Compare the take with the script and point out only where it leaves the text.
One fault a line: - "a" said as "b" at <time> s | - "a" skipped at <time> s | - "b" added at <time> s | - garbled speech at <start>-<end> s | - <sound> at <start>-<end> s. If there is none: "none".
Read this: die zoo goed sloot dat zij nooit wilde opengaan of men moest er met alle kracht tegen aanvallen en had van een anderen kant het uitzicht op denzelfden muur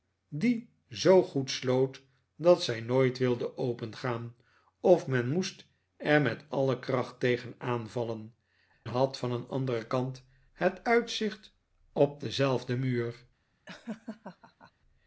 - "en" skipped at 8.3 s
- laugh at 13.7-14.7 s